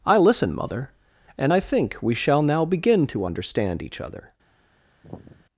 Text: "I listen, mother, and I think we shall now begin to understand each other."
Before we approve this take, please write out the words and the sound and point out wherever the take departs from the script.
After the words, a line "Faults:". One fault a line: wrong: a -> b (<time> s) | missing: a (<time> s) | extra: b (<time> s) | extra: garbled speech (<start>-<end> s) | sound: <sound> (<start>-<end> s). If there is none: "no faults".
"I listen, mother, and I think we shall now begin to understand each other."
Faults:
sound: sigh (5.0-5.5 s)